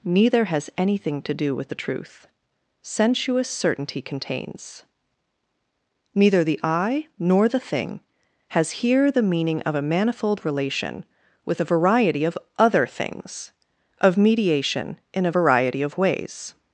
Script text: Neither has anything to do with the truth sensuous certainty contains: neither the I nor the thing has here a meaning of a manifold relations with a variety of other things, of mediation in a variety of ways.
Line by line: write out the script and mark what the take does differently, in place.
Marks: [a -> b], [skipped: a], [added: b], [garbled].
Neither has anything to do with the truth sensuous certainty contains: neither the I nor the thing has here [a -> the] meaning of a manifold [relations -> relation] with a variety of other things, of mediation in a variety of ways.